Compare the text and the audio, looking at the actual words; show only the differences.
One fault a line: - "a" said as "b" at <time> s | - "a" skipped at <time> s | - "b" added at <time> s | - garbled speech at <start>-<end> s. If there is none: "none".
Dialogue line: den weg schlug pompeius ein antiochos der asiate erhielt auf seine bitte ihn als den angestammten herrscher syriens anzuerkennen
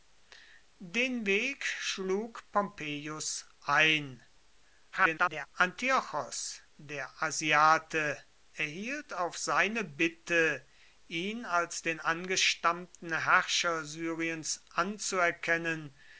- garbled speech at 4.9-5.5 s